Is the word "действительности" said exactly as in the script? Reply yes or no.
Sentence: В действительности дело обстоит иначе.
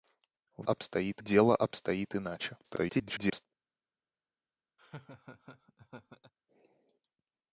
no